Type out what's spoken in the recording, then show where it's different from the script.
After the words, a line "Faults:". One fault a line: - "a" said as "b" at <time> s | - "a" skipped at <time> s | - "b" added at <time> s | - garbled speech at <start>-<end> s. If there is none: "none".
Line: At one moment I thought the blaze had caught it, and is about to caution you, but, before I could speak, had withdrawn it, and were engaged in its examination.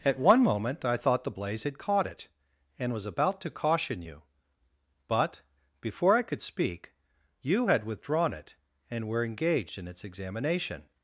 At one moment I thought the blaze had caught it, and was about to caution you, but, before I could speak, you had withdrawn it, and were engaged in its examination.
Faults:
- "is" said as "was" at 2.9 s
- "you" added at 7.4 s